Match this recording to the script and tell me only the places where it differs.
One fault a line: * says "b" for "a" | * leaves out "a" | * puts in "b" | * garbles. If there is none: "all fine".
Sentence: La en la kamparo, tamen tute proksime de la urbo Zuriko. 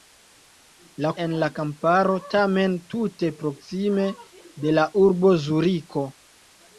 all fine